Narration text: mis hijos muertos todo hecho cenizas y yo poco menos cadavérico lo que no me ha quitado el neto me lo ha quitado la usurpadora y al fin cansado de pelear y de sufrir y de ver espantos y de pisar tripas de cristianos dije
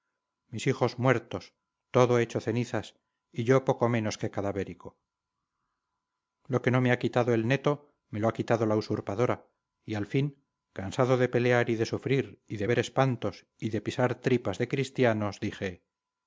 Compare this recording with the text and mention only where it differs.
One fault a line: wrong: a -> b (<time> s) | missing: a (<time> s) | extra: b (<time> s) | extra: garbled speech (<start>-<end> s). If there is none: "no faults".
extra: que (4.2 s)